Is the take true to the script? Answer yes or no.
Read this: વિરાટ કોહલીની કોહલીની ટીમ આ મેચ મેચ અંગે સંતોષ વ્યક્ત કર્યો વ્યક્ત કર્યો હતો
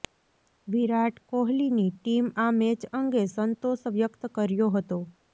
no